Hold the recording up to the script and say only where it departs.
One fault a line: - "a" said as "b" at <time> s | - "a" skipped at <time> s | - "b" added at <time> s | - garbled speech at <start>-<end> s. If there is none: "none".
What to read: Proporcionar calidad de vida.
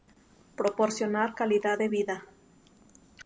none